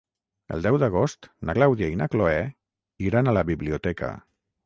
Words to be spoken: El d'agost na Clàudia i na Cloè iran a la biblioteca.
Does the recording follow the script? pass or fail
fail